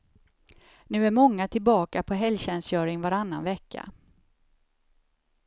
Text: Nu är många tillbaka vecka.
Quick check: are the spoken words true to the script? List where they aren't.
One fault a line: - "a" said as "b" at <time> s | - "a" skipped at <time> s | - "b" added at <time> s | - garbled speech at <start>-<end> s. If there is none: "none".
- "på helgtjänstgöring varannan" added at 2.0 s